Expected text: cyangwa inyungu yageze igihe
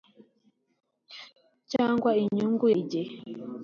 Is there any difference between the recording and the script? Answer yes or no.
yes